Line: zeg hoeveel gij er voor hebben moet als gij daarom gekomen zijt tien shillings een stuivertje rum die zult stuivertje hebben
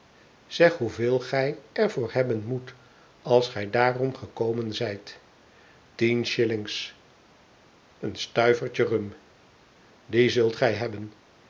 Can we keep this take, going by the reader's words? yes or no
no